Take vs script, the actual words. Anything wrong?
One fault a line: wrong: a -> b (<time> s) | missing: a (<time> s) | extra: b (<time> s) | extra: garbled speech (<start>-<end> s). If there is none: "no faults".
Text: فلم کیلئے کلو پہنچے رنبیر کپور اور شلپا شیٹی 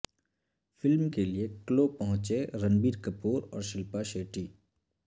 no faults